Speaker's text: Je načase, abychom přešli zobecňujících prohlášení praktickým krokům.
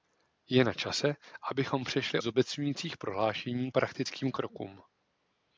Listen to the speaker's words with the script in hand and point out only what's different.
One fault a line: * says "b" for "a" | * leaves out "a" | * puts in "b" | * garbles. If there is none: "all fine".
all fine